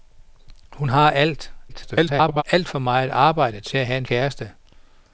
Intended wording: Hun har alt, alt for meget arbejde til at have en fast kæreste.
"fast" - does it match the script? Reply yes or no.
no